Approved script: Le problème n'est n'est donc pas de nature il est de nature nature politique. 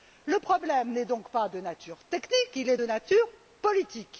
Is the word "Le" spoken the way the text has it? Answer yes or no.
yes